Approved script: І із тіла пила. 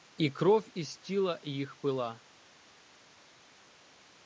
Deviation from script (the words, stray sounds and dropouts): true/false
true